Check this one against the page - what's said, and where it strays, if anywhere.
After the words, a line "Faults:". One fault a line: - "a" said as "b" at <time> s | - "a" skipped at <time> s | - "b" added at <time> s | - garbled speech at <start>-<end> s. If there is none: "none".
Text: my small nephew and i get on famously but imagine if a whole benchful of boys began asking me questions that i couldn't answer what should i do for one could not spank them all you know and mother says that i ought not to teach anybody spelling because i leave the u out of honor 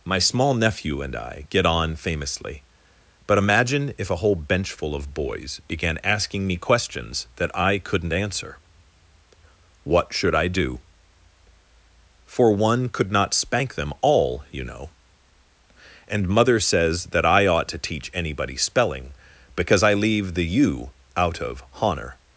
my small nephew and i get on famously but imagine if a whole benchful of boys began asking me questions that i couldn't answer what should i do for one could not spank them all you know and mother says that i ought to teach anybody spelling because i leave the u out of honor
Faults:
- "not" skipped at 17.7 s